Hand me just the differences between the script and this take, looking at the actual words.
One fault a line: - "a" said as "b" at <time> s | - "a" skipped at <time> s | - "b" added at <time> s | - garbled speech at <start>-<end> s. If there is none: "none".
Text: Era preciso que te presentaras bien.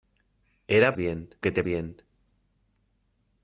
- "preciso" said as "bien" at 1.0 s
- "presentaras" skipped at 1.6 s